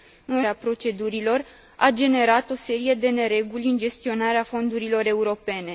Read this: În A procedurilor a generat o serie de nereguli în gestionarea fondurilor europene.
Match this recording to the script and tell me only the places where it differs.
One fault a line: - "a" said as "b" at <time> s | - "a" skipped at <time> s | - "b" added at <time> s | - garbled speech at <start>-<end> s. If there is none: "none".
none